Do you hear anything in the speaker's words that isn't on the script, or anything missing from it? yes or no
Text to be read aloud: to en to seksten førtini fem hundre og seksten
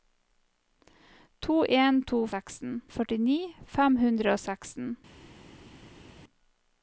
no